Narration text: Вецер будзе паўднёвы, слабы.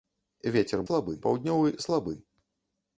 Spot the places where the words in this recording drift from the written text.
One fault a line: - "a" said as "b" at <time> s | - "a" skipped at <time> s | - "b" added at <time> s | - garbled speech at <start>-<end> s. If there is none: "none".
- "будзе" said as "слабы" at 0.9 s